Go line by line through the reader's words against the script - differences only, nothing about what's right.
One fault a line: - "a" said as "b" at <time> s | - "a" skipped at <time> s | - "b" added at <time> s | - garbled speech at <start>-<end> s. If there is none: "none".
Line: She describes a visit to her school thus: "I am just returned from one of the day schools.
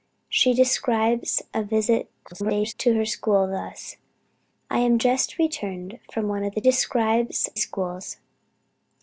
- garbled speech at 2.2-2.7 s
- "day" said as "describes" at 6.6 s